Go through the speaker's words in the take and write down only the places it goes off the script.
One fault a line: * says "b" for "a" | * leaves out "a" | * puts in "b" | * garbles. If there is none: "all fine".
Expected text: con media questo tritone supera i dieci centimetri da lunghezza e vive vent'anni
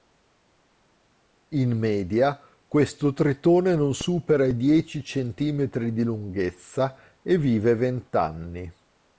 * says "in" for "con"
* puts in "non"
* says "di" for "da"